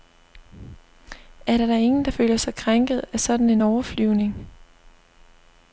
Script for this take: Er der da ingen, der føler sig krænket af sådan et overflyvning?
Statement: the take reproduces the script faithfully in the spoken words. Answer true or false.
false